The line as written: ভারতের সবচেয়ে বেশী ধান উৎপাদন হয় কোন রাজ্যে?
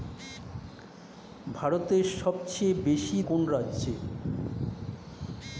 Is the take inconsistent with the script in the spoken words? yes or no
yes